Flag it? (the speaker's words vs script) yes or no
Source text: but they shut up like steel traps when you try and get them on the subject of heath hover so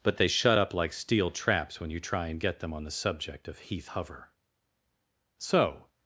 no